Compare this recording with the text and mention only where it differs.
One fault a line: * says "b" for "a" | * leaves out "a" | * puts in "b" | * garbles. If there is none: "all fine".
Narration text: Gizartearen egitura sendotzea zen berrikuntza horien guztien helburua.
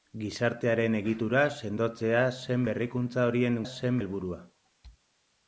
* says "zen" for "guztien"